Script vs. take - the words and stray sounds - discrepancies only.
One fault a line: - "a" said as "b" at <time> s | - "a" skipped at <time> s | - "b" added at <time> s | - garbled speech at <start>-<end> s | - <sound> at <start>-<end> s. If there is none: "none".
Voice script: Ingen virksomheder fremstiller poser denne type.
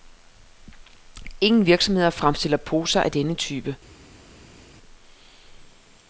- "af" added at 3.0 s